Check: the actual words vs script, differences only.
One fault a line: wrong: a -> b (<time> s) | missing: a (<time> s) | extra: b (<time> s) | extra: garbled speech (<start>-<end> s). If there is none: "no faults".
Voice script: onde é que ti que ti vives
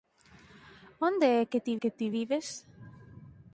no faults